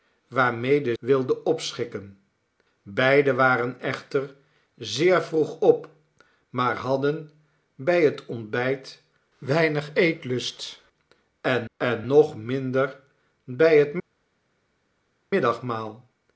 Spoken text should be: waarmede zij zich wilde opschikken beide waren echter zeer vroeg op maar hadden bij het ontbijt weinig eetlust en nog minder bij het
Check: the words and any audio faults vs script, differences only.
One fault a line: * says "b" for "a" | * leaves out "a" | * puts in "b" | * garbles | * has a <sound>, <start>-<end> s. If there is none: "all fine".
* leaves out "zij zich"
* puts in "en"